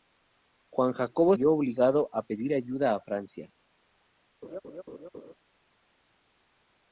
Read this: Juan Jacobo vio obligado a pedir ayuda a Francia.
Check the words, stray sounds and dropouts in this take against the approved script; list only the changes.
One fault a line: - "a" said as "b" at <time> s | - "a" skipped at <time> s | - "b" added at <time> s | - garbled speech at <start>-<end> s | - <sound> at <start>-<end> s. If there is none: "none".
- laugh at 4.4-5.3 s